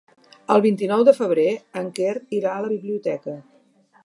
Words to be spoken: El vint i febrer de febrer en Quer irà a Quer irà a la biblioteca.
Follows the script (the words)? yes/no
no